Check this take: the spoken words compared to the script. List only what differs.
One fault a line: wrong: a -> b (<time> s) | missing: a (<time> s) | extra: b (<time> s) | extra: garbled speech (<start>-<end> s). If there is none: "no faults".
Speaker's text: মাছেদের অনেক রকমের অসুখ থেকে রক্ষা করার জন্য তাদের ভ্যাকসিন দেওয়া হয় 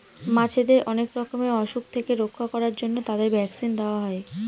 no faults